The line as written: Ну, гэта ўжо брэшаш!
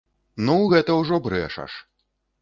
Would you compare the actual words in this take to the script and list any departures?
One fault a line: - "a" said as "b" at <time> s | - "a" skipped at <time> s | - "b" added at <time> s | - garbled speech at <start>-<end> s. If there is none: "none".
none